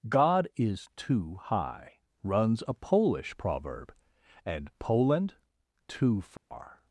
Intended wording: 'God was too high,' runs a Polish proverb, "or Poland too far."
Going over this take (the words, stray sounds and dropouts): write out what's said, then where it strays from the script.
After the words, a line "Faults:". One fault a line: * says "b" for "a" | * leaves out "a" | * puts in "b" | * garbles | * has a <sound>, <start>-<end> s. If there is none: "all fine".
'God is too high,' runs a Polish proverb, "and Poland too far."
Faults:
* says "is" for "was"
* says "and" for "or"
* has a dropout, 6.4-6.5 s